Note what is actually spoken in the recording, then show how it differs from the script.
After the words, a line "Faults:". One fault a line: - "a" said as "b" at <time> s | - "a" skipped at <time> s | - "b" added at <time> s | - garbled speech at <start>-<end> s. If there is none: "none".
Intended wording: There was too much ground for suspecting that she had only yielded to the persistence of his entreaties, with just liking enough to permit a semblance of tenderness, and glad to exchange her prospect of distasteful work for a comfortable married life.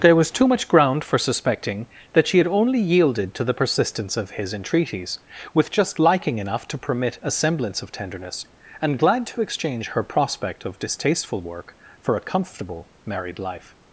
There was too much ground for suspecting that she had only yielded to the persistence of his entreaties, with just liking enough to permit a semblance of tenderness, and glad to exchange her prospect of distasteful work for a comfortable married life.
Faults:
none